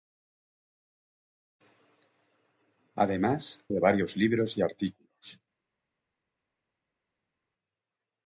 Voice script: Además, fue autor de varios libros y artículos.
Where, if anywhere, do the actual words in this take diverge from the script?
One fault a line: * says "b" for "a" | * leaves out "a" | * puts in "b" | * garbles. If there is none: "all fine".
* leaves out "fue autor"